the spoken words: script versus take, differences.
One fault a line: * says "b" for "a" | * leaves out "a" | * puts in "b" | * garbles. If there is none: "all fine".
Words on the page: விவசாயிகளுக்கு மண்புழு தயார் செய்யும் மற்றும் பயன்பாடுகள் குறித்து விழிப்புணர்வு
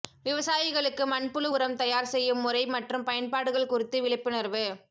* puts in "உரம்"
* puts in "முறை"